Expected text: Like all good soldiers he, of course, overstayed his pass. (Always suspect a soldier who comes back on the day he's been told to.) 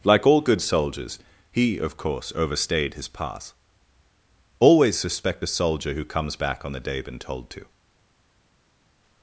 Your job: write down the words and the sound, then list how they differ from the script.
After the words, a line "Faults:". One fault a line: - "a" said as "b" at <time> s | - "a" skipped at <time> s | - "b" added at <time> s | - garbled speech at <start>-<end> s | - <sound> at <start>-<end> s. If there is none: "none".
Like all good soldiers he, of course, overstayed his pass. (Always suspect a soldier who comes back on the day been told to.)
Faults:
- "he's" skipped at 7.0 s